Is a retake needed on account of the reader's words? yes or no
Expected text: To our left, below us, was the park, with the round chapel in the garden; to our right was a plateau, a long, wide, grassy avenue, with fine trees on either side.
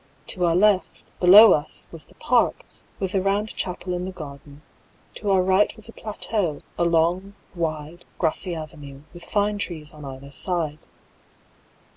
no